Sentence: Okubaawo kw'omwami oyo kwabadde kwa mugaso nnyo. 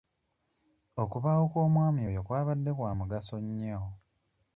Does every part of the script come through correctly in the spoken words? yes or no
yes